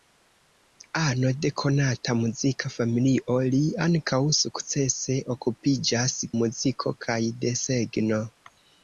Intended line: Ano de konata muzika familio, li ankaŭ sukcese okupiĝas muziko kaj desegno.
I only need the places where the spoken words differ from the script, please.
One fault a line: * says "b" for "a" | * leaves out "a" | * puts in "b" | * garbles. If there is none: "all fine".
all fine